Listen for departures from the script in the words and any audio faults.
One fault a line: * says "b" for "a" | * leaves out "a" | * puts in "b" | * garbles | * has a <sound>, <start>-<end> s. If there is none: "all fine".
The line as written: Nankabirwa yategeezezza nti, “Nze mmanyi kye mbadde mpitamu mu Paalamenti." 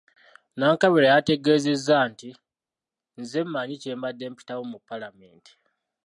all fine